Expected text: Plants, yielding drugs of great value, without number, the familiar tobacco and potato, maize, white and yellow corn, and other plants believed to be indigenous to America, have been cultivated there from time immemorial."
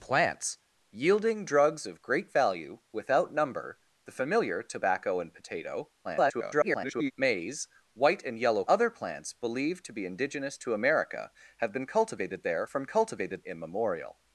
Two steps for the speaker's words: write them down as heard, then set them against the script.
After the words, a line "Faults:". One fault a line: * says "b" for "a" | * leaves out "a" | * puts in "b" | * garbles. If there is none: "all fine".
Plants, yielding drugs of great value, without number, the familiar tobacco and potato, [garbled] maize, white and yellow other plants believed to be indigenous to America, have been cultivated there from cultivated immemorial."
Faults:
* garbles
* leaves out "corn and"
* says "cultivated" for "time"